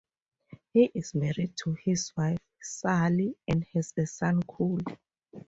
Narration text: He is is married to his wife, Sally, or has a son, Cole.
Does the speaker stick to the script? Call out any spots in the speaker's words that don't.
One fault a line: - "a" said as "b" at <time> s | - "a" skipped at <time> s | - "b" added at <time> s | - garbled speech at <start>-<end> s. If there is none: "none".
- "is" skipped at 1.1 s
- "or" said as "and" at 3.5 s